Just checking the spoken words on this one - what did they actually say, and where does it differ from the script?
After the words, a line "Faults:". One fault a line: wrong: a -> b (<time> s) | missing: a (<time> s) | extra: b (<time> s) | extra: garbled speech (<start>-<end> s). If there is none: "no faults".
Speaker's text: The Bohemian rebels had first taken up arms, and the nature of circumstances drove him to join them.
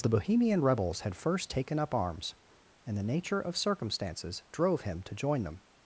The Bohemian rebels had first taken up arms, and the nature of circumstances drove him to join them.
Faults:
no faults